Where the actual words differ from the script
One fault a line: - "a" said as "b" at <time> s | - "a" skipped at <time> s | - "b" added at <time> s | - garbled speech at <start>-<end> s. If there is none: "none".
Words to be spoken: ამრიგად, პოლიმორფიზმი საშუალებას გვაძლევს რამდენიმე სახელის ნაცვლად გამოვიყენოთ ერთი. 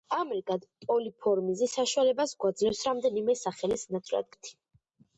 - "გამოვიყენოთ" skipped at 4.3 s